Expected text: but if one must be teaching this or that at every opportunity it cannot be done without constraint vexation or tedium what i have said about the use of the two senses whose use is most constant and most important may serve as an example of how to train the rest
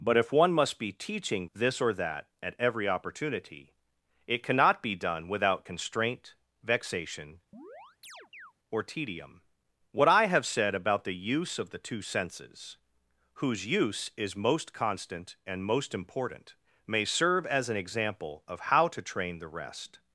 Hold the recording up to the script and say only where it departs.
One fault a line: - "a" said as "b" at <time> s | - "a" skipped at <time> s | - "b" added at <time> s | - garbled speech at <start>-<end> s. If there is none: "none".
none